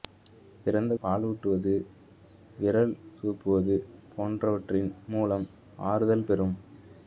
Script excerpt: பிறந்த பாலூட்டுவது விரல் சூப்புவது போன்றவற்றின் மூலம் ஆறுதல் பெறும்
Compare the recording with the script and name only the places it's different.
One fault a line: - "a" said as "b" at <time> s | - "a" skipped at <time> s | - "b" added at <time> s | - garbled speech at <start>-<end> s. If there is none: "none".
none